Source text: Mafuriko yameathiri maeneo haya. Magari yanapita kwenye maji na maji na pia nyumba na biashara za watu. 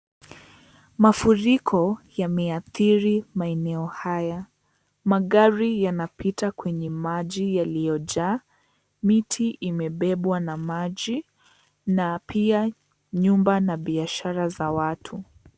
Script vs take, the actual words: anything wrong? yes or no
yes